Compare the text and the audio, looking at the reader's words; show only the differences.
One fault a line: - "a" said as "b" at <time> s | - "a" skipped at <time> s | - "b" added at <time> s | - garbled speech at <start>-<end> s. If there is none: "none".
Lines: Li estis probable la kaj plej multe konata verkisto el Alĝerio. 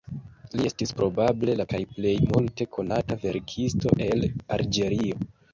none